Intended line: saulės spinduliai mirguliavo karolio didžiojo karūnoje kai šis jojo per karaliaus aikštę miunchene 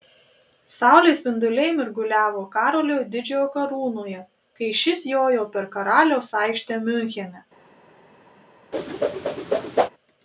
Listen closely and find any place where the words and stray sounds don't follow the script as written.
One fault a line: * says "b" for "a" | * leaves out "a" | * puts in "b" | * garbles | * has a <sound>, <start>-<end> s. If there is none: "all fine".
* has a whoosh, 8.7-9.9 s